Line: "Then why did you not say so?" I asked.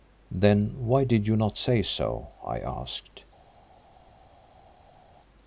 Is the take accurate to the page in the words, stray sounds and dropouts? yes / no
yes